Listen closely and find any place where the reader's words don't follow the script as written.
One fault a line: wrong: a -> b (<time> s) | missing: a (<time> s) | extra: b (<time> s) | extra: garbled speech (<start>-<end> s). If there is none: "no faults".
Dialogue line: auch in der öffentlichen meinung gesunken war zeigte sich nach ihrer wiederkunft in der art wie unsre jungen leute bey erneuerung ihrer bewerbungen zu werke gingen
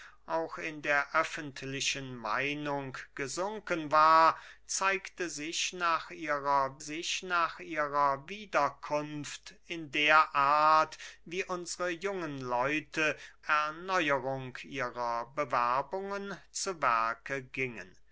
extra: sich nach ihrer (6.8 s)
missing: bey (13.2 s)